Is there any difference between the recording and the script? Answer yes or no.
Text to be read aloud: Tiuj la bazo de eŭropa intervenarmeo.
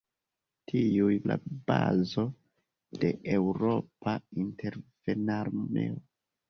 no